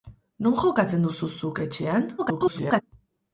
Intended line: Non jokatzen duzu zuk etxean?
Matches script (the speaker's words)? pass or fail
fail